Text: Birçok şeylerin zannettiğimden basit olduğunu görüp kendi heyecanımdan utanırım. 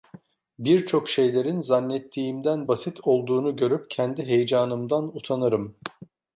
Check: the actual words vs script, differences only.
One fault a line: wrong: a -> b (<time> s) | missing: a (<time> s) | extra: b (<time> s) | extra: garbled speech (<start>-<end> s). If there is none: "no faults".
no faults